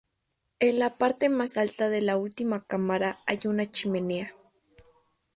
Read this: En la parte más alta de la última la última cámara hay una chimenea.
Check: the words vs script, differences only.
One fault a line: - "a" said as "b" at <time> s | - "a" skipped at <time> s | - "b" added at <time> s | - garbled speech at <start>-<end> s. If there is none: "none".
- "la última" skipped at 2.6 s